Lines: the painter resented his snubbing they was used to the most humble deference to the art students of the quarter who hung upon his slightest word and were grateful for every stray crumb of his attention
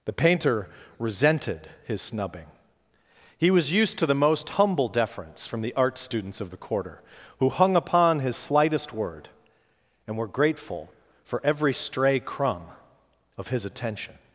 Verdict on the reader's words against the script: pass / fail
fail